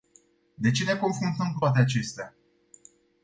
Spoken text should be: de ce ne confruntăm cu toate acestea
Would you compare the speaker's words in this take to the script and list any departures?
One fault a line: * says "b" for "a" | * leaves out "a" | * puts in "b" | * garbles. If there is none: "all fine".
all fine